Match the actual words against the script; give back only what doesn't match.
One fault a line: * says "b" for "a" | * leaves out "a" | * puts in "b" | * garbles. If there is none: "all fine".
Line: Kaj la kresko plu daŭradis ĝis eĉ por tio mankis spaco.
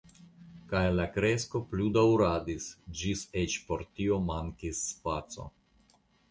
all fine